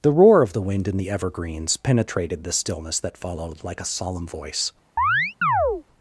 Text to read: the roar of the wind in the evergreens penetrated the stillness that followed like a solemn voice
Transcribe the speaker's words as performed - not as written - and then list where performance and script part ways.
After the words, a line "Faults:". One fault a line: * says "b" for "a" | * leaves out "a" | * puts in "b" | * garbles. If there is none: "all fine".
the roar of the wind in the evergreens penetrated the stillness that followed like a solemn voice
Faults:
all fine